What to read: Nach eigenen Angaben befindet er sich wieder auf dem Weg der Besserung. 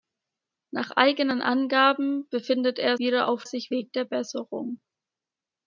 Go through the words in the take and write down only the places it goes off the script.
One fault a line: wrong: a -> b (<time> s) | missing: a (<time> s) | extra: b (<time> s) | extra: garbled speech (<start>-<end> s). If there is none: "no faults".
missing: sich (3.0 s)
wrong: dem -> sich (3.4 s)